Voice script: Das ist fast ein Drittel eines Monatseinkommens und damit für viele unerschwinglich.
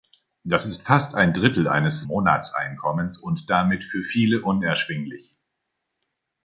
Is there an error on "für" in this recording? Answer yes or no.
no